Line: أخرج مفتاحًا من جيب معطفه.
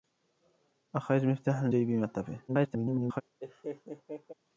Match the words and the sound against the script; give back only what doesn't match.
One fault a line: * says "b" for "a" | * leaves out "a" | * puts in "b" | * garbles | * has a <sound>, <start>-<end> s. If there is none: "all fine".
* leaves out "من"
* garbles
* has a laugh, 3.4-4.3 s